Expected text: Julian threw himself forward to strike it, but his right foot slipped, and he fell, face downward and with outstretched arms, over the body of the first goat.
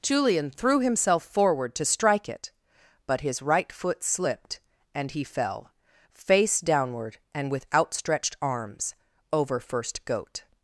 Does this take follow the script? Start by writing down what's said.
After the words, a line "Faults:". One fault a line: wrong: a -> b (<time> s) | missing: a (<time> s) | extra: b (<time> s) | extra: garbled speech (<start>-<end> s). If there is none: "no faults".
Julian threw himself forward to strike it, but his right foot slipped, and he fell, face downward and with outstretched arms, over first goat.
Faults:
missing: the body of the (9.6 s)